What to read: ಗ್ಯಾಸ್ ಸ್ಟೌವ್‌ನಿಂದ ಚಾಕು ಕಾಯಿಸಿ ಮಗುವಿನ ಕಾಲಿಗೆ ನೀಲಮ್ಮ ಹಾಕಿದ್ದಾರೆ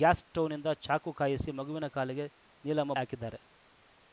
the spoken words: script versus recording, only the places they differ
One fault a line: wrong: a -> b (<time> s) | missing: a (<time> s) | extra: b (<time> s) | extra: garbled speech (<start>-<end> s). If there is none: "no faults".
no faults